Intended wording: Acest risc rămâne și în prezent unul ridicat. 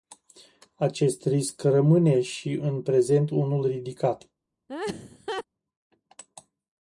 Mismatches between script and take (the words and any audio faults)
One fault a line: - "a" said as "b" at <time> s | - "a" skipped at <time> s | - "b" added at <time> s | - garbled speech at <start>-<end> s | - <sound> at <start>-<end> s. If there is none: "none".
- laugh at 4.7-5.4 s